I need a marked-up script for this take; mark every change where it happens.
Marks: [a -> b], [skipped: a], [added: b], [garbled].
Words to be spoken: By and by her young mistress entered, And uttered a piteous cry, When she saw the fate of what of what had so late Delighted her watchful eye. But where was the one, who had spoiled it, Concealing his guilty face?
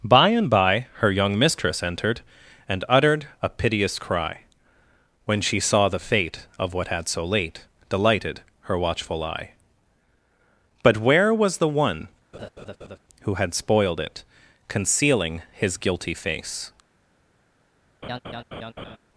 By and by her young mistress entered, And uttered a piteous cry, When she saw the fate of what [skipped: of what] had so late Delighted her watchful eye. But where was the one, who had spoiled it, Concealing his guilty face?